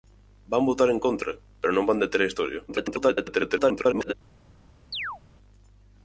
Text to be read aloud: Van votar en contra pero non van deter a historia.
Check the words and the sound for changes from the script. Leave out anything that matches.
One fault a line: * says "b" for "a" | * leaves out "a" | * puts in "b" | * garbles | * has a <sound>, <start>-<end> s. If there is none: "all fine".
* garbles
* has a chirp, 4.9-5.2 s